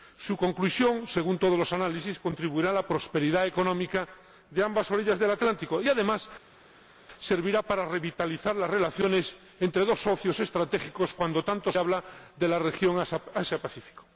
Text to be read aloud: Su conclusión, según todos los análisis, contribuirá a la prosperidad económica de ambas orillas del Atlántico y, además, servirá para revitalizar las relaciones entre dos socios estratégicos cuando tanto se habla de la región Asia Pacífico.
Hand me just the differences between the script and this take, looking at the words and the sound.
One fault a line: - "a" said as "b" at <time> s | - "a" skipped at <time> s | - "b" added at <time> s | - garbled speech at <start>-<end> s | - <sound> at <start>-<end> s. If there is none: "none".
- "se" skipped at 11.7 s